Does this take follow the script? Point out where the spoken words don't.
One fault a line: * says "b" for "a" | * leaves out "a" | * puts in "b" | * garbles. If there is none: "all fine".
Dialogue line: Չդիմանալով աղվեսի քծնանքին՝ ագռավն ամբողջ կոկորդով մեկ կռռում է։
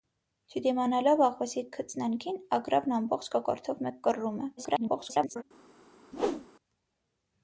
* garbles